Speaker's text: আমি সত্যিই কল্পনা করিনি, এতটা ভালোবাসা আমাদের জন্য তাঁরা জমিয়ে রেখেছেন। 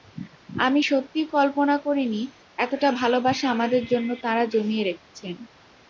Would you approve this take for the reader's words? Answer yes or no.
yes